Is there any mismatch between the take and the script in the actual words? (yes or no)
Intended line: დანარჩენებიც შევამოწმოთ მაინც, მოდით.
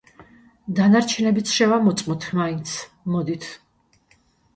no